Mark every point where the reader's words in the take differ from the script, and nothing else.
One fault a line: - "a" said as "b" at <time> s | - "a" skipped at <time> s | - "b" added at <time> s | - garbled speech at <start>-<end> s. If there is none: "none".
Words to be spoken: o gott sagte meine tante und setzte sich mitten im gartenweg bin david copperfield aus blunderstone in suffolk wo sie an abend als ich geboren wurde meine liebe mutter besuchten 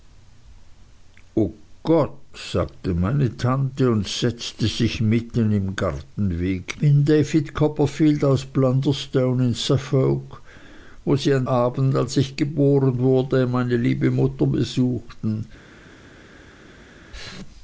none